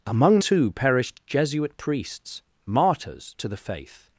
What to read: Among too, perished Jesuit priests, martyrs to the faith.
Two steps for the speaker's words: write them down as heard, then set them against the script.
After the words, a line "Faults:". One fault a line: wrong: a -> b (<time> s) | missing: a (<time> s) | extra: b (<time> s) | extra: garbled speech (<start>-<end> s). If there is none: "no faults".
Among too, perished Jesuit priests, martyrs to the faith.
Faults:
no faults